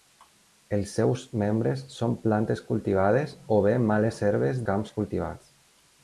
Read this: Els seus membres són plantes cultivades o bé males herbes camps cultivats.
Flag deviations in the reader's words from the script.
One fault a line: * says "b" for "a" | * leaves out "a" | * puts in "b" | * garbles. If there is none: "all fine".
all fine